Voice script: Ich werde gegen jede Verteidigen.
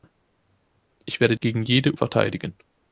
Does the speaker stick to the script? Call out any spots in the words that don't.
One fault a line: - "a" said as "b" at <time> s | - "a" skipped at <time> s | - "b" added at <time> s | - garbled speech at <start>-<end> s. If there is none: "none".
none